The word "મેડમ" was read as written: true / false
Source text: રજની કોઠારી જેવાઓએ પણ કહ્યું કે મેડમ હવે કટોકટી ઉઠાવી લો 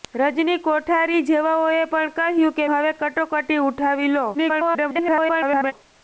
false